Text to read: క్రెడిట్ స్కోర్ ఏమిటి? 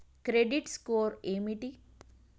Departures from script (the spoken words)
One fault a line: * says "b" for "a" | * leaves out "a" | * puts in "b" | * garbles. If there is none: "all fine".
all fine